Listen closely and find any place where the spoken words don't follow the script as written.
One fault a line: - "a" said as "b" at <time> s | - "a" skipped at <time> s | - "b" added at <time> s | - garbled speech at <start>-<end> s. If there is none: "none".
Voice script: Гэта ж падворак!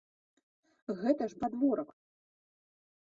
none